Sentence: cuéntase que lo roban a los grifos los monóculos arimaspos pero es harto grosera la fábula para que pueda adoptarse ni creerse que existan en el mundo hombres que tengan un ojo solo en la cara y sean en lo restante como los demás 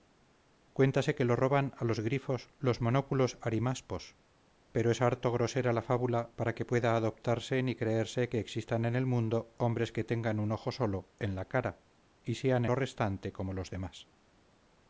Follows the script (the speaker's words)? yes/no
no